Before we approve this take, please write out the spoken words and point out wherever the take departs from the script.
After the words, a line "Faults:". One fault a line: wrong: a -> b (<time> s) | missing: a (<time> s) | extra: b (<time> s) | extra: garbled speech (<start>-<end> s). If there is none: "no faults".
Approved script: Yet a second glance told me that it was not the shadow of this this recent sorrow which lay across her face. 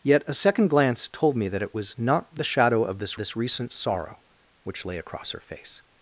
Yet a second glance told me that it was not the shadow of this this recent sorrow which lay across her face.
Faults:
no faults